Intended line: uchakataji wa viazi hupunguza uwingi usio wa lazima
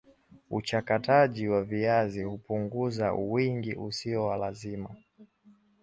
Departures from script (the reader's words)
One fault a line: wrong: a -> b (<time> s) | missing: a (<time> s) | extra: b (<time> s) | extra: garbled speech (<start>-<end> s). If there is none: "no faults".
no faults